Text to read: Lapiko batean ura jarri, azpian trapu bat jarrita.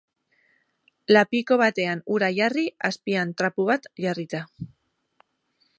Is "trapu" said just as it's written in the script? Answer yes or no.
yes